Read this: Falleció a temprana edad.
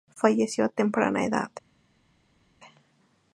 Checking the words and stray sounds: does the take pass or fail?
pass